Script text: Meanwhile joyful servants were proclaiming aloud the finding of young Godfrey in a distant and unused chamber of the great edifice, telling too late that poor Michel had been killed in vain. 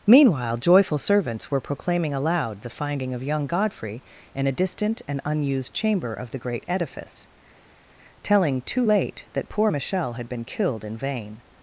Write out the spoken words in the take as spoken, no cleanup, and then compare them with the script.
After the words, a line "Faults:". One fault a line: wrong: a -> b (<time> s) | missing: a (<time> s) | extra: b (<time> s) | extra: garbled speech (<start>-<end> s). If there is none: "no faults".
Meanwhile joyful servants were proclaiming aloud the finding of young Godfrey in a distant and unused chamber of the great edifice, telling too late that poor Michel had been killed in vain.
Faults:
no faults